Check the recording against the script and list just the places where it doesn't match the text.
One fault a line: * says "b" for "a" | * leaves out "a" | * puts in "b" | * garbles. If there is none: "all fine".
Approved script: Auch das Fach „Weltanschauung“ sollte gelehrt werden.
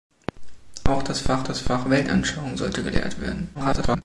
* puts in "das Fach"
* garbles